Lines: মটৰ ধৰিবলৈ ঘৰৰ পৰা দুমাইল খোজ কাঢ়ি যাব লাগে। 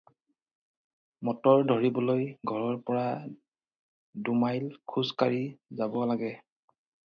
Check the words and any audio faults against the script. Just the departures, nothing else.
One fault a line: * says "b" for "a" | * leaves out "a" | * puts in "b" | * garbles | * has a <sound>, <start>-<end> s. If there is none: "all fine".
all fine